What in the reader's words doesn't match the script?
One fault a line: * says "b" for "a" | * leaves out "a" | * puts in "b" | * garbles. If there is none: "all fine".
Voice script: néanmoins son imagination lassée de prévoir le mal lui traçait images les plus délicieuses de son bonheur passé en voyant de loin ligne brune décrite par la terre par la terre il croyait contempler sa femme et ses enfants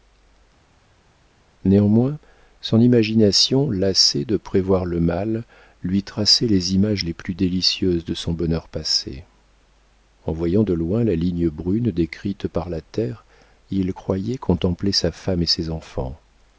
* puts in "les"
* puts in "la"
* leaves out "par la terre"